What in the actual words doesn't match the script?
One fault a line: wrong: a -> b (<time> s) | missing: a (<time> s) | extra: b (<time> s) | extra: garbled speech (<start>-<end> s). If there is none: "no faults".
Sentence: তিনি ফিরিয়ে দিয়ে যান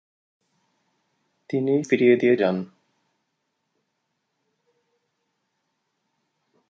no faults